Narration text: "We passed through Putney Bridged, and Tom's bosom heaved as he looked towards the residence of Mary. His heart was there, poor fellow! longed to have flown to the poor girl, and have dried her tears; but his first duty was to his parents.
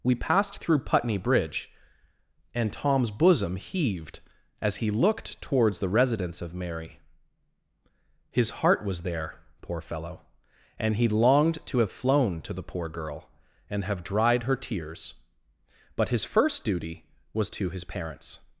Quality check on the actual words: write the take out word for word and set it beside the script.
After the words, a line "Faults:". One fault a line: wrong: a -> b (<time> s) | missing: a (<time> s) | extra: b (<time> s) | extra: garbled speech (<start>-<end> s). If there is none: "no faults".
"We passed through Putney Bridge, and Tom's bosom heaved as he looked towards the residence of Mary. His heart was there, poor fellow! and he longed to have flown to the poor girl, and have dried her tears; but his first duty was to his parents.
Faults:
wrong: Bridged -> Bridge (1.2 s)
extra: and he (10.8 s)